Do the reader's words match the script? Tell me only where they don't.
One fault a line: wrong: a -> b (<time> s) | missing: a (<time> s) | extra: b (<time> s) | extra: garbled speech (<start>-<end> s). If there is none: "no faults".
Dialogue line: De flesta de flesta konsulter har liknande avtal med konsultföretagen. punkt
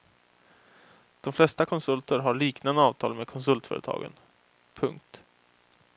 missing: de flesta (1.6 s)